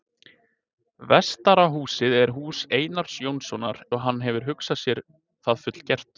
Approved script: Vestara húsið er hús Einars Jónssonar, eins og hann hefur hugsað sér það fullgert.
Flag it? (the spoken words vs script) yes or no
yes